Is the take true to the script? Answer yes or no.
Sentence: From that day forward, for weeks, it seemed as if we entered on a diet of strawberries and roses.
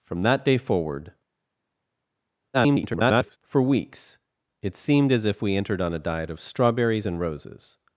no